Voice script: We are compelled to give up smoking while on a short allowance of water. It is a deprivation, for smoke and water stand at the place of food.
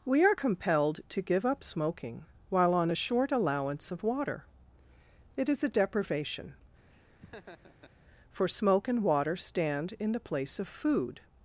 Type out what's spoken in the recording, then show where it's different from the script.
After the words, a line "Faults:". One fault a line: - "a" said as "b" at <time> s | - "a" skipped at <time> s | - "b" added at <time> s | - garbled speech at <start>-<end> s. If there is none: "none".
We are compelled to give up smoking while on a short allowance of water. It is a deprivation, for smoke and water stand in the place of food.
Faults:
- "at" said as "in" at 10.0 s